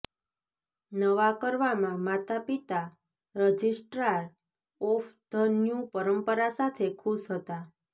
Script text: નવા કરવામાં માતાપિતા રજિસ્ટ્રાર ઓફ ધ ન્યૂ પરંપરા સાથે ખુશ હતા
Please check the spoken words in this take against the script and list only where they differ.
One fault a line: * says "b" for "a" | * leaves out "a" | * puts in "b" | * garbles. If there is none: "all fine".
all fine